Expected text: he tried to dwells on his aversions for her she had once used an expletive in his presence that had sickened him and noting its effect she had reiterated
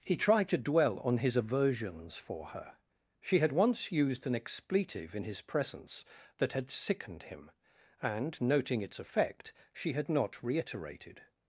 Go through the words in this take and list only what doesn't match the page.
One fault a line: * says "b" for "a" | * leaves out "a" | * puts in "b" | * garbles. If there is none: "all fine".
* says "dwell" for "dwells"
* puts in "not"